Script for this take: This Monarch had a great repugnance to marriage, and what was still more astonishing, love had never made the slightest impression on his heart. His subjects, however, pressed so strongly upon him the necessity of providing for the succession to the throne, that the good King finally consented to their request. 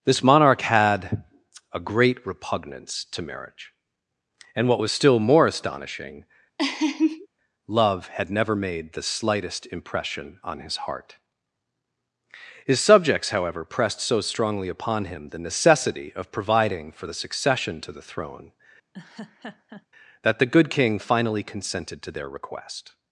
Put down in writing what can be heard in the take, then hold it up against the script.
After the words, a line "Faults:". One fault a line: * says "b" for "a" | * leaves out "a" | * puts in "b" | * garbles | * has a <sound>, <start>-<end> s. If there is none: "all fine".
This Monarch had a great repugnance to marriage, and what was still more astonishing, love had never made the slightest impression on his heart. His subjects, however, pressed so strongly upon him the necessity of providing for the succession to the throne, that the good King finally consented to their request.
Faults:
* has a laugh, 6.6-7.3 s
* has a laugh, 18.9-19.9 s